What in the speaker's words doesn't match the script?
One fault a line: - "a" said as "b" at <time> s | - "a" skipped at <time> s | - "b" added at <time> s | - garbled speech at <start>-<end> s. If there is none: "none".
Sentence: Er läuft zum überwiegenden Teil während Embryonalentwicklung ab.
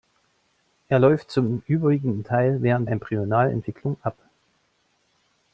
none